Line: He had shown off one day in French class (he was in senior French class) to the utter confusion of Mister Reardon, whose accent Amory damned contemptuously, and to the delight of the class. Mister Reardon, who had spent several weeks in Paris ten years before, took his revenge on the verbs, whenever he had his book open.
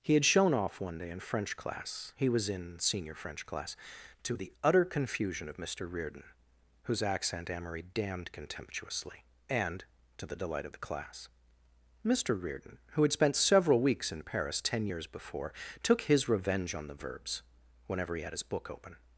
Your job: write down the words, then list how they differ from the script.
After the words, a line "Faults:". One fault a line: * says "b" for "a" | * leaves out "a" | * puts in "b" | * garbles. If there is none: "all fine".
He had shown off one day in French class (he was in senior French class) to the utter confusion of Mister Reardon, whose accent Amory damned contemptuously, and to the delight of the class. Mister Reardon, who had spent several weeks in Paris ten years before, took his revenge on the verbs, whenever he had his book open.
Faults:
all fine